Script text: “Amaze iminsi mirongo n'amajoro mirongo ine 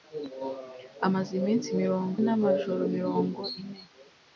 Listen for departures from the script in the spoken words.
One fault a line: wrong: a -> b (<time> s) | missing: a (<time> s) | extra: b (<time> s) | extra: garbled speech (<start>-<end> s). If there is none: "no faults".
no faults